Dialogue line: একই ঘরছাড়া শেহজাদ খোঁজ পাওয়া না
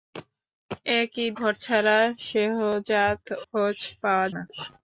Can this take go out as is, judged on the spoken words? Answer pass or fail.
pass